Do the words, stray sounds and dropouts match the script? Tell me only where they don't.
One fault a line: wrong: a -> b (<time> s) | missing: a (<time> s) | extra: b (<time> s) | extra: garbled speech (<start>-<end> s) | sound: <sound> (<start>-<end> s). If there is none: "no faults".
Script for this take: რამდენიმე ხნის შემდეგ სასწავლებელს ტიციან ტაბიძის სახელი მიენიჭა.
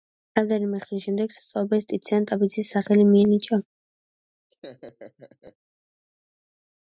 sound: laugh (4.5-5.6 s)